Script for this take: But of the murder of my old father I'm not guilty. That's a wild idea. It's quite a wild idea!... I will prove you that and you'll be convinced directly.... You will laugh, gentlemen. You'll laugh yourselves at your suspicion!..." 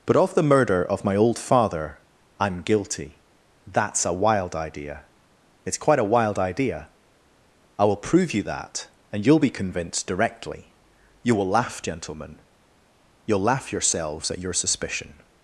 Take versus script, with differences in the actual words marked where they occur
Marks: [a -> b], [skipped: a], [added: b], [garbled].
But of the murder of my old father I'm [skipped: not] guilty. That's a wild idea. It's quite a wild idea!... I will prove you that and you'll be convinced directly.... You will laugh, gentlemen. You'll laugh yourselves at your suspicion!..."